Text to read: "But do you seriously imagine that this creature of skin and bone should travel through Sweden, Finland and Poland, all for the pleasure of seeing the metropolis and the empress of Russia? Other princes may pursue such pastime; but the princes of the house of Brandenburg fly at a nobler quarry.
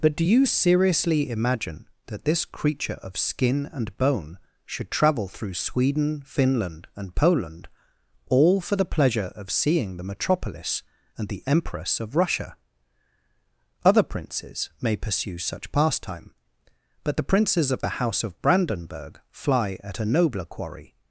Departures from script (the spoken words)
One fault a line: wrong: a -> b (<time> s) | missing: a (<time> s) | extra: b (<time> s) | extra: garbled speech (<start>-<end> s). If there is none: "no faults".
no faults